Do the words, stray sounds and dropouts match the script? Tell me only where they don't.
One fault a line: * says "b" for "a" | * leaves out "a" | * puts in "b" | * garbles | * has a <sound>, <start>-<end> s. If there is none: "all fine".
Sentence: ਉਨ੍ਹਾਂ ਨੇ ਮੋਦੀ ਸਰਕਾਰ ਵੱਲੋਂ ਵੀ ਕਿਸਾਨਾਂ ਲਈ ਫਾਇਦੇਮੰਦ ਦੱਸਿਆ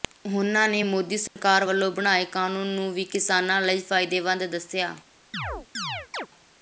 * has a dropout, 1.3-1.4 s
* puts in "ਬਣਾਏ ਕਾਨੂੰਨ ਨੂੰ"
* has a chirp, 5.3-6.3 s